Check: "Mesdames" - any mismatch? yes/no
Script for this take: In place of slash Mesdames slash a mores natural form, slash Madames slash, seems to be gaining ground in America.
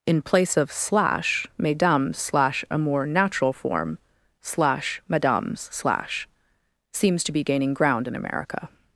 no